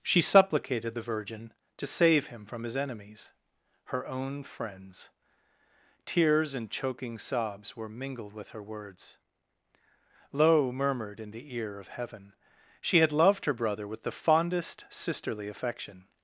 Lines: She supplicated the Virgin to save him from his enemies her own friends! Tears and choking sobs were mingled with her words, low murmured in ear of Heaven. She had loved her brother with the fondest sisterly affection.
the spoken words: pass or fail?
fail